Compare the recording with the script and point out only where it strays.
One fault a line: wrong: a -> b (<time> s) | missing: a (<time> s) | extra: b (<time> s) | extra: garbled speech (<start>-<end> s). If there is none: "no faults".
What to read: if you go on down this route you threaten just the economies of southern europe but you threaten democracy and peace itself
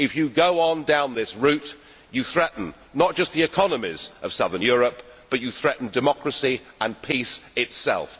extra: not (2.9 s)